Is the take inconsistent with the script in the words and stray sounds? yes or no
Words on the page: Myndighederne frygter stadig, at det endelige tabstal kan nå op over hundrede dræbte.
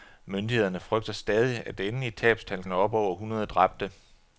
yes